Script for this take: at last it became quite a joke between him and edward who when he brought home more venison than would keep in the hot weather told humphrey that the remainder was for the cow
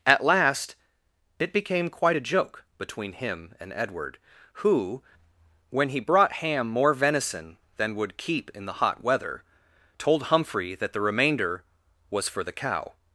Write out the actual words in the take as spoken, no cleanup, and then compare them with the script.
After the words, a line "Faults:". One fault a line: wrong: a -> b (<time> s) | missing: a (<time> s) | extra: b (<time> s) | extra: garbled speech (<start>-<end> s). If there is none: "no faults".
at last it became quite a joke between him and edward who when he brought ham more venison than would keep in the hot weather told humphrey that the remainder was for the cow
Faults:
wrong: home -> ham (6.3 s)